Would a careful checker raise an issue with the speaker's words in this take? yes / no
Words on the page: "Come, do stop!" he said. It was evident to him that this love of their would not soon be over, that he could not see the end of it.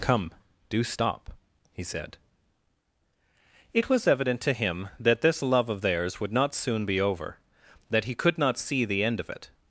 yes